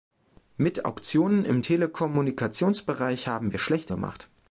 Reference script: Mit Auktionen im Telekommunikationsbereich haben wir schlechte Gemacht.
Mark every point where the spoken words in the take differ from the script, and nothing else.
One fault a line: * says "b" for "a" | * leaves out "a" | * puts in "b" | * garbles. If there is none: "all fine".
all fine